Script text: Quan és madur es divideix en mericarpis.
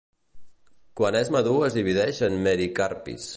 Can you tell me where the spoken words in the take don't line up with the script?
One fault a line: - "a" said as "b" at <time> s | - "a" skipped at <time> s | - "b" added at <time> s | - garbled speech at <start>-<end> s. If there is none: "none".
none